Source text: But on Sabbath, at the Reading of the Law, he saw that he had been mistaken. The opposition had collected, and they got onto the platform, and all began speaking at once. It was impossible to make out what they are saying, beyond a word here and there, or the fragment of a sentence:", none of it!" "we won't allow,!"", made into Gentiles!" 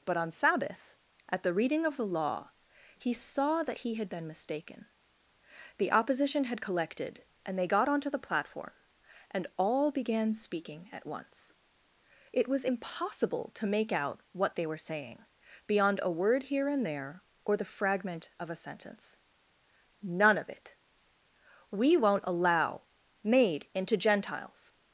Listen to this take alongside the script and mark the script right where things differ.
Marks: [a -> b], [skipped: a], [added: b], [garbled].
But on Sabbath, at the Reading of the Law, he saw that he had been mistaken. The opposition had collected, and they got onto the platform, and all began speaking at once. It was impossible to make out what they [are -> were] saying, beyond a word here and there, or the fragment of a sentence:", none of it!" "we won't allow,!"", made into Gentiles!"